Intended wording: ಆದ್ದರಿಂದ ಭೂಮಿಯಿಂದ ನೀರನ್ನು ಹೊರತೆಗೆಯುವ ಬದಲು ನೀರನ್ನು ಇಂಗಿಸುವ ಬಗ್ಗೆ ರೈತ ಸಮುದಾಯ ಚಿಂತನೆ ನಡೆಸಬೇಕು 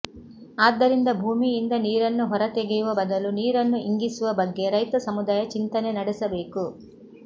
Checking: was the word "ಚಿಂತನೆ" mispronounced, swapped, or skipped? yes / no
no